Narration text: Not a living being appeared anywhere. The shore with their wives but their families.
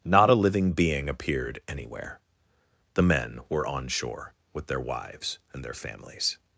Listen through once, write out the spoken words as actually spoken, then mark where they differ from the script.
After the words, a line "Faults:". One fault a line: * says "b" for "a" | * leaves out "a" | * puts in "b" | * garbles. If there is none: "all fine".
Not a living being appeared anywhere. The men were on shore with their wives and their families.
Faults:
* puts in "men were on"
* says "and" for "but"